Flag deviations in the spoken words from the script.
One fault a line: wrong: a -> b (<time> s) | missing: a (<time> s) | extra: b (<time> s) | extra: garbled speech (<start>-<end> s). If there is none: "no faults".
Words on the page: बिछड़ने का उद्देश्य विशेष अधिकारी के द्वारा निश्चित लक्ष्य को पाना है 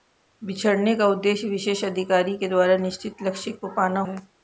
no faults